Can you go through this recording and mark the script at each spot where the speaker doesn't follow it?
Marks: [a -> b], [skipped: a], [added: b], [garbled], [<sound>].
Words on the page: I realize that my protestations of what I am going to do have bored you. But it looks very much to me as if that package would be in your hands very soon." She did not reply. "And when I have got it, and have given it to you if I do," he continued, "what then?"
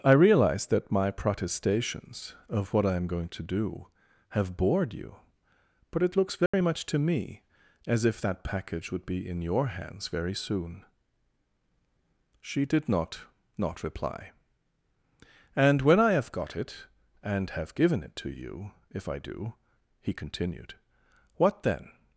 I realize that my protestations of what I am going to do have bored you. But it looks very [dropout] much to me as if that package would be in your hands very soon." She did not [added: not] reply. "And when I have got it, and have given it to you if I do," he continued, "what then?"